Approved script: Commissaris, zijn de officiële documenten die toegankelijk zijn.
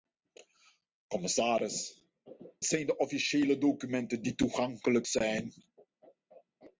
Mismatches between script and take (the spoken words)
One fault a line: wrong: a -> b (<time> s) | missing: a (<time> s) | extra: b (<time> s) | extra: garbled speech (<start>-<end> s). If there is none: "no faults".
no faults